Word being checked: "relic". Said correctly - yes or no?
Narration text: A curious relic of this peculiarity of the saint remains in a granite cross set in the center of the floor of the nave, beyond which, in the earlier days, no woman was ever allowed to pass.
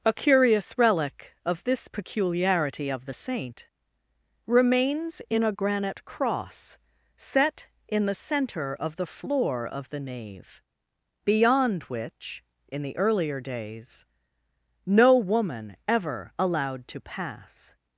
yes